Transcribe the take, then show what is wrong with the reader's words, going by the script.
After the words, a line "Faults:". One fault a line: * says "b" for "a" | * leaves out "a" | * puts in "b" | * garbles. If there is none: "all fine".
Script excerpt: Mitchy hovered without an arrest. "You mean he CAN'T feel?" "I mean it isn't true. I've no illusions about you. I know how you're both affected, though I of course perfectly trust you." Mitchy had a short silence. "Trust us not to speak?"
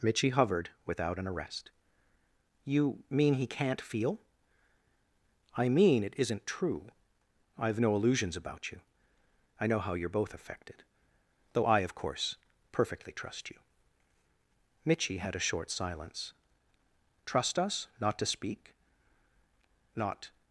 Mitchy hovered without an arrest. "You mean he CAN'T feel?" "I mean it isn't true. I've no illusions about you. I know how you're both affected, though I of course perfectly trust you." Mitchy had a short silence. "Trust us not to speak?" "Not
Faults:
* puts in "Not"